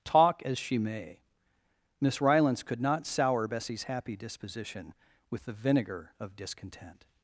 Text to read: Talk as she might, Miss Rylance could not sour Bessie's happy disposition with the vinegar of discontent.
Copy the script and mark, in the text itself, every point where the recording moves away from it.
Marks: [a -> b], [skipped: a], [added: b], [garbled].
Talk as she [might, -> may] Miss Rylance could not sour Bessie's happy disposition with the vinegar of discontent.